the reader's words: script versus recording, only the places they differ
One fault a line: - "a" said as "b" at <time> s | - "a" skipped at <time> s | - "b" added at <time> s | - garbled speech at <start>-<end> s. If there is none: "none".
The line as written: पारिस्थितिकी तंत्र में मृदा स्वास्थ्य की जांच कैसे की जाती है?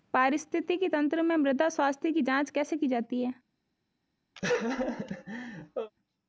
none